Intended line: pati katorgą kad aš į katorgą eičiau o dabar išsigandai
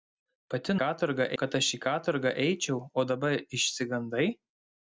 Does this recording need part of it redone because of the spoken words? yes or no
no